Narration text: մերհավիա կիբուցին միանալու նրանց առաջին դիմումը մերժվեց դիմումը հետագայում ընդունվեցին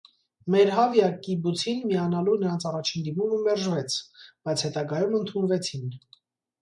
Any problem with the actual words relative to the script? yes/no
yes